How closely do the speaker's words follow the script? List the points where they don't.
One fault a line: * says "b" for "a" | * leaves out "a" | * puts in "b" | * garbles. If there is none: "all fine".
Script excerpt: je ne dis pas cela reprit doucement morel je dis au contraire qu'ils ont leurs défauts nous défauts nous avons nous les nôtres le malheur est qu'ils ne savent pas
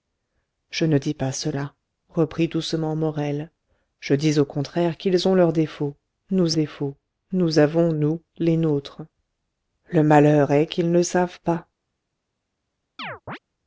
all fine